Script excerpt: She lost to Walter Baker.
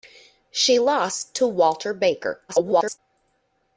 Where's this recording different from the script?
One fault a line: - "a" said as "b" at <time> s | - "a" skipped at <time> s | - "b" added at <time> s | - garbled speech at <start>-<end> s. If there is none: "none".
- garbled speech at 2.5-3.0 s